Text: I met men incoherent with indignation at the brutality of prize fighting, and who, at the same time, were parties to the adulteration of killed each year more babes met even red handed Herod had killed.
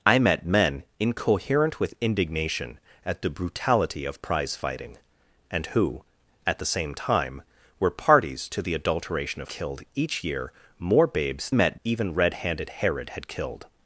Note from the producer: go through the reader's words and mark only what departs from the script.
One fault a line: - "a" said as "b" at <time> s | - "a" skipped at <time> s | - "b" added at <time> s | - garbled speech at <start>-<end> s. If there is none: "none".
none